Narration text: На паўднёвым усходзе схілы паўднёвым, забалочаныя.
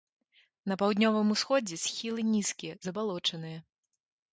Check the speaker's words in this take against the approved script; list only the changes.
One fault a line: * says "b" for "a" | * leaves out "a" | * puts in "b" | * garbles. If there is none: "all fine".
* says "нізкія" for "паўднёвым"